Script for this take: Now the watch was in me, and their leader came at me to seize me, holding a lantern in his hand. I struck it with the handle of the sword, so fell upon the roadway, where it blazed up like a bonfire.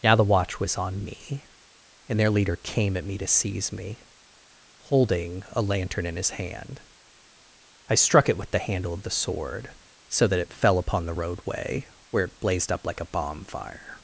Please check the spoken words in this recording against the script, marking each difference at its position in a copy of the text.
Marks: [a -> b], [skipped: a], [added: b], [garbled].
Now the watch was [in -> on] me, and their leader came at me to seize me, holding a lantern in his hand. I struck it with the handle of the sword, so [added: that it] fell upon the roadway, where it blazed up like a bonfire.